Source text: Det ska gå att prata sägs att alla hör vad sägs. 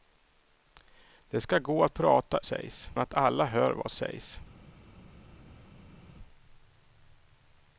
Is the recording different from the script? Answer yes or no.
no